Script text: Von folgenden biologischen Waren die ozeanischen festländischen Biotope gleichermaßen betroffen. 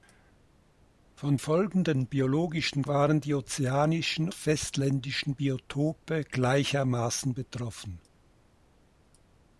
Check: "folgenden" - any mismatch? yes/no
no